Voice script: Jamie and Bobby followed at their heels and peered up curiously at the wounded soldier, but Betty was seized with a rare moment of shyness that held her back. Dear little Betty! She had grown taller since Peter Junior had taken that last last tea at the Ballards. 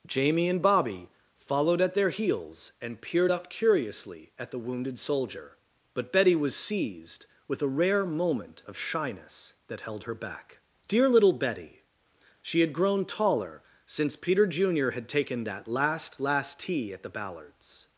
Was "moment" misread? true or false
false